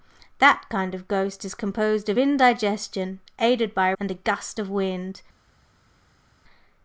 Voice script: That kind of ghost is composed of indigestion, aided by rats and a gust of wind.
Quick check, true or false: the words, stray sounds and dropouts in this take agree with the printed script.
false